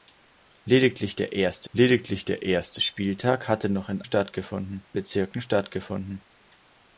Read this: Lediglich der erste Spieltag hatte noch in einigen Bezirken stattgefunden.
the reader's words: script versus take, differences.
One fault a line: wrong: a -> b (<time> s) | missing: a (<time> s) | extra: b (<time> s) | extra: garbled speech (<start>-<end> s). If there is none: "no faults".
extra: lediglich der erste (1.7 s)
wrong: einigen -> stattgefunden (4.0 s)